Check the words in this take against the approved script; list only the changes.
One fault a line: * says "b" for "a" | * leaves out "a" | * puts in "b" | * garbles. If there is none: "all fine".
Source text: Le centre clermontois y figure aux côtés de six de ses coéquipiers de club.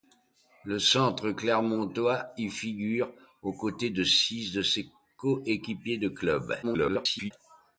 * garbles